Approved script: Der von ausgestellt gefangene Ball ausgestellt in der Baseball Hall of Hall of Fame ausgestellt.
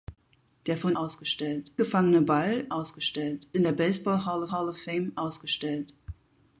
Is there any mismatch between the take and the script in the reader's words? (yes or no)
no